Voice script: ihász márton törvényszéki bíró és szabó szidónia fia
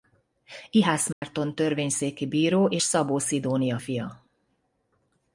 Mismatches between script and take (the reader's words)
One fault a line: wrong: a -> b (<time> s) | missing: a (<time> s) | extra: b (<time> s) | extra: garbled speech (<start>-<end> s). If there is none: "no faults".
no faults